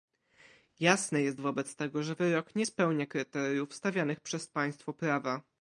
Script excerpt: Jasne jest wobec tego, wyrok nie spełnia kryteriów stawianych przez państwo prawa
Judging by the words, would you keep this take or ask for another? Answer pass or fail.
fail